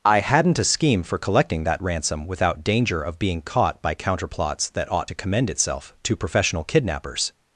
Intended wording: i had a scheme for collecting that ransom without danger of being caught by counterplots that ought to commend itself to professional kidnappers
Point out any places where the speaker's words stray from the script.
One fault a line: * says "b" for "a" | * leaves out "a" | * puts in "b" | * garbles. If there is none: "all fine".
* says "hadn't" for "had"